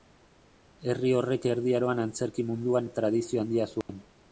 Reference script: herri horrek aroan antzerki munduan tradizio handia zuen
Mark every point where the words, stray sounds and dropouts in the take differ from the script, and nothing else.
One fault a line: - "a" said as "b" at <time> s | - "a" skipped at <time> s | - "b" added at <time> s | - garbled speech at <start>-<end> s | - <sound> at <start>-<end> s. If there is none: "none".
- "erdi" added at 1.5 s
- dropout at 3.8-3.9 s